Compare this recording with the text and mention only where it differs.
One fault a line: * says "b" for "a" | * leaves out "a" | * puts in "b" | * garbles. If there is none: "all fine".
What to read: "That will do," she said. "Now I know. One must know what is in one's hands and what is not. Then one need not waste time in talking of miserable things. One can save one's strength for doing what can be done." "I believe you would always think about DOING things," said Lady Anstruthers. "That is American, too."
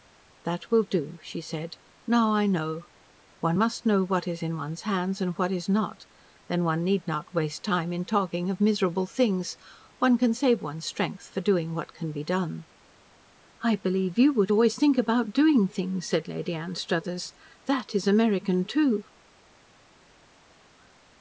all fine